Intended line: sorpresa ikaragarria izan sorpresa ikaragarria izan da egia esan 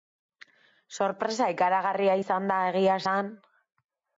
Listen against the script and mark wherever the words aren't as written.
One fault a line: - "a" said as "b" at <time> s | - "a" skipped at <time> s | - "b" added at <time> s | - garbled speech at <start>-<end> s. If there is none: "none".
- "sorpresa ikaragarria izan" skipped at 2.5 s